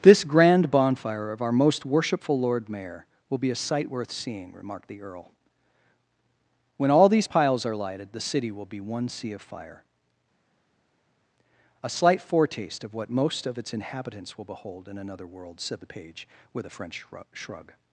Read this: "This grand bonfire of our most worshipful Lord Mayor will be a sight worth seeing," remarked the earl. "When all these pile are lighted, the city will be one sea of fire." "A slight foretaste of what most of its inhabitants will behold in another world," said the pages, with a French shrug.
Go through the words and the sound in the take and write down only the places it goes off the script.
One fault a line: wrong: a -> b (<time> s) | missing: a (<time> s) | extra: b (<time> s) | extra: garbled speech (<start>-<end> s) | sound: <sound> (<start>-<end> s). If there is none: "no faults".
wrong: pile -> piles (7.3 s)
wrong: pages -> page (15.9 s)